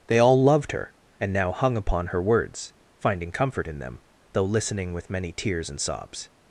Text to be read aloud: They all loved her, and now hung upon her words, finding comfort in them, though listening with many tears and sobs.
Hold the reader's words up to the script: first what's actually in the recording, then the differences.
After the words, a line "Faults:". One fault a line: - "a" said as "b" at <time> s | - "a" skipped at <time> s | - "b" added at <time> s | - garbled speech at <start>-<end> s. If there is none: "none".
They all loved her, and now hung upon her words, finding comfort in them, though listening with many tears and sobs.
Faults:
none